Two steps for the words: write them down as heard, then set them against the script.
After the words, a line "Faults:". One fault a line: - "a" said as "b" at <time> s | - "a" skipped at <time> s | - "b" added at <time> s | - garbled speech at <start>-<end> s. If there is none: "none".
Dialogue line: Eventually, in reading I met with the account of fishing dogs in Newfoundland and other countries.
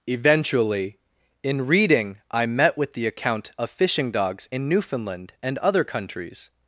Eventually, in reading I met with the account of fishing dogs in Newfoundland and other countries.
Faults:
none